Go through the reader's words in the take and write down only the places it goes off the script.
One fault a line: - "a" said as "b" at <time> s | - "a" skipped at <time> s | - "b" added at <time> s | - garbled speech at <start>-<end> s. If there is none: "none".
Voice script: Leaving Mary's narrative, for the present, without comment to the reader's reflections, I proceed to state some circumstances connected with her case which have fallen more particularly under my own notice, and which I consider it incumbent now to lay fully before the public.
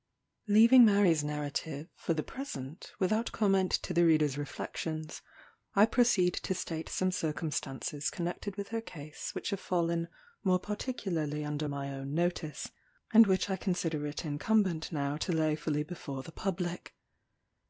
none